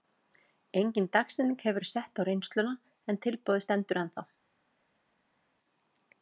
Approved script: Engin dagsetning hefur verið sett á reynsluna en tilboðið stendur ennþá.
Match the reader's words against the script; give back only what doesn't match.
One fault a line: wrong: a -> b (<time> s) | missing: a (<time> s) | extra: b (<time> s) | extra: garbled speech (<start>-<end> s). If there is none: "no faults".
no faults